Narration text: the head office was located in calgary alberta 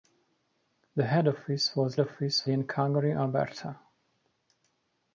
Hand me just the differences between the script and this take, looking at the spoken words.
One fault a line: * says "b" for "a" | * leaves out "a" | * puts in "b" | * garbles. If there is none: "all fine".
* says "office" for "located"